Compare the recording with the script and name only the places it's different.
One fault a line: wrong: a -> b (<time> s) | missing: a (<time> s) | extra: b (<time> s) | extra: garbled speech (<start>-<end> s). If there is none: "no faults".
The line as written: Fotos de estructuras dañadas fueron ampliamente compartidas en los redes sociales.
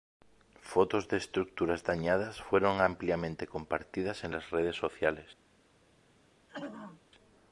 wrong: los -> las (4.3 s)